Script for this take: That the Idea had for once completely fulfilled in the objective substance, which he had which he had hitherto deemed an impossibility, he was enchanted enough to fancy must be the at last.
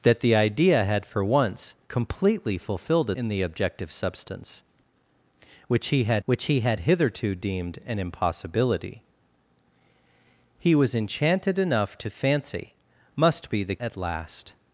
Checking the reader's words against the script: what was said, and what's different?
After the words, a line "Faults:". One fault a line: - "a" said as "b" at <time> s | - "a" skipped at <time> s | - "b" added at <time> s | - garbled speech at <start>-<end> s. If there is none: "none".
That the Idea had for once completely fulfilled in the objective substance, which he had which he had hitherto deemed an impossibility, he was enchanted enough to fancy must be the at last.
Faults:
none